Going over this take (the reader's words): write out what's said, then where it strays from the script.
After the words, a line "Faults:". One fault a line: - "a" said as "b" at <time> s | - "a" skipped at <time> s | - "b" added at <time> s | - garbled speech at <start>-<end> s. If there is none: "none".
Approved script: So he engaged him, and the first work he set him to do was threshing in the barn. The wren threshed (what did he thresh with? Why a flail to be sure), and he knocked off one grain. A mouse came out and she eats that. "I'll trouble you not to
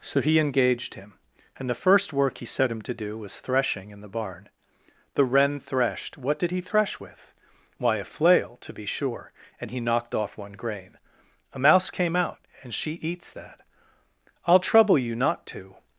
So he engaged him, and the first work he set him to do was threshing in the barn. The wren threshed (what did he thresh with? Why a flail to be sure), and he knocked off one grain. A mouse came out and she eats that. "I'll trouble you not to
Faults:
none